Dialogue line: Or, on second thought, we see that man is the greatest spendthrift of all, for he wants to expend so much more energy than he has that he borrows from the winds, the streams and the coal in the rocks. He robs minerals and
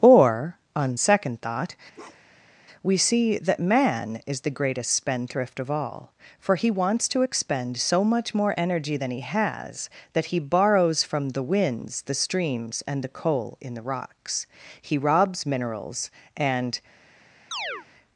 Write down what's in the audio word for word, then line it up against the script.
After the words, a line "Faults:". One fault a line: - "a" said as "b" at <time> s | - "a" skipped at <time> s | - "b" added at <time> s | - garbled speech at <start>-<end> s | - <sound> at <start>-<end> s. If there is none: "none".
Or, on second thought, we see that man is the greatest spendthrift of all, for he wants to expend so much more energy than he has that he borrows from the winds, the streams and the coal in the rocks. He robs minerals and
Faults:
- bark at 1.9-2.5 s
- chirp at 17.5-17.9 s